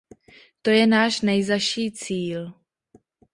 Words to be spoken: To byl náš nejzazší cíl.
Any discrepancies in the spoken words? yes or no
yes